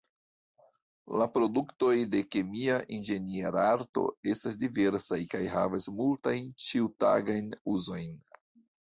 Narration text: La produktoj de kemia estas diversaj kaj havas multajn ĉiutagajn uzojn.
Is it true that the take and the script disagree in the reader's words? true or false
true